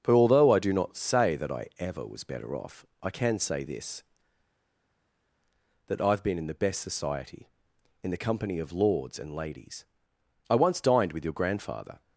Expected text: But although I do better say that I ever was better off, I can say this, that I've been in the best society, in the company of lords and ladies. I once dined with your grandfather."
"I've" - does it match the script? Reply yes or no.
yes